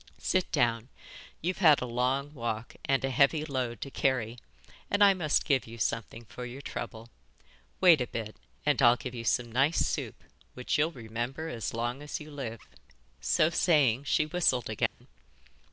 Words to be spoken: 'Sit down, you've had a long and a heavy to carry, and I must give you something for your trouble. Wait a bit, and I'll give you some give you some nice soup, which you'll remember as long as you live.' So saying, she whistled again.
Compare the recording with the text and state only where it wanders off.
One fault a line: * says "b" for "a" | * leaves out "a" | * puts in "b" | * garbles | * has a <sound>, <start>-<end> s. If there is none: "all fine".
* puts in "walk"
* puts in "load"
* leaves out "give you some"
* has a dropout, 14.9-15.0 s